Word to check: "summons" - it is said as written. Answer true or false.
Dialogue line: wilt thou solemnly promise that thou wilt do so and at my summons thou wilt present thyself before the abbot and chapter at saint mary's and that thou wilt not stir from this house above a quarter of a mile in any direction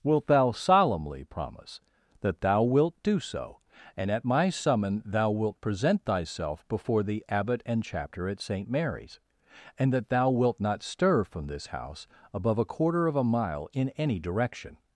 false